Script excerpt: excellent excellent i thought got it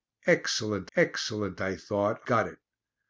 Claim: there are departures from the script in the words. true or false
false